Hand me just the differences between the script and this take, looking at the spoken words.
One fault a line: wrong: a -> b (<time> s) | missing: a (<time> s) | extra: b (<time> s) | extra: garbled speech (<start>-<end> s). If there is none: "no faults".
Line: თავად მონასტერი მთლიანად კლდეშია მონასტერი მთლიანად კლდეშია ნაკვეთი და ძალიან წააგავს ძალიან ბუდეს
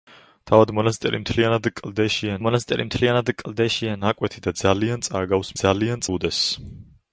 no faults